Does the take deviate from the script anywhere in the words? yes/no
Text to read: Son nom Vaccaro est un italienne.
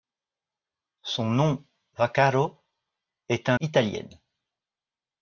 no